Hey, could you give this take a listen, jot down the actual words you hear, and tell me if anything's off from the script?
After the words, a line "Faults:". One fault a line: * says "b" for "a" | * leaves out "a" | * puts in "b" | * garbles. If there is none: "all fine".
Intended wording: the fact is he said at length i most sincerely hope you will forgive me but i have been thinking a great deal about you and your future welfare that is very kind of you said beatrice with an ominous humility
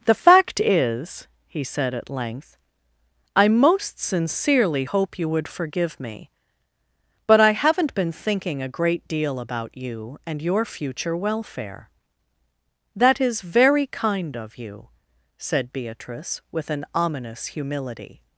the fact is he said at length i most sincerely hope you would forgive me but i haven't been thinking a great deal about you and your future welfare that is very kind of you said beatrice with an ominous humility
Faults:
* says "would" for "will"
* says "haven't" for "have"